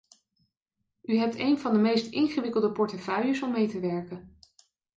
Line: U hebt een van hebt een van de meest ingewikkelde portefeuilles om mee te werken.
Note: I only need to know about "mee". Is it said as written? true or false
true